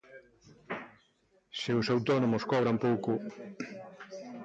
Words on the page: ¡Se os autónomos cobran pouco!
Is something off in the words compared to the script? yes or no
no